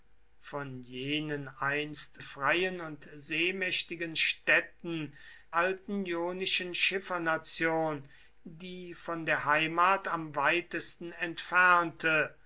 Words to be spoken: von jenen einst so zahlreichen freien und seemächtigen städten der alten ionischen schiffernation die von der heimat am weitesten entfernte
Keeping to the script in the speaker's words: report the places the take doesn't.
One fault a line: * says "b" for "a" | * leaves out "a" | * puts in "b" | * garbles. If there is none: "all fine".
* leaves out "so zahlreichen"
* leaves out "der"